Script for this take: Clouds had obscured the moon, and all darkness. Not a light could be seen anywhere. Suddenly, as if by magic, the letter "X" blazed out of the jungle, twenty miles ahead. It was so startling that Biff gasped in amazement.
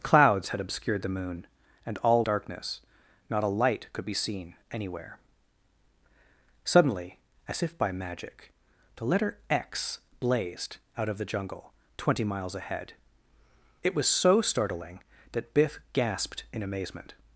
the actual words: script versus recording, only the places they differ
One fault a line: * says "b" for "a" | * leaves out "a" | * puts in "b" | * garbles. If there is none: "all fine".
all fine